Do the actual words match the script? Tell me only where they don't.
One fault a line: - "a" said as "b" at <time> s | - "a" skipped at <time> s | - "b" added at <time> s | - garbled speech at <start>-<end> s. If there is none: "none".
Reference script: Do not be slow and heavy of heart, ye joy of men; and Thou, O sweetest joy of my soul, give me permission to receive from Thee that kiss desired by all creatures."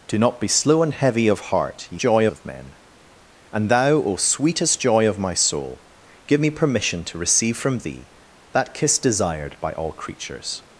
none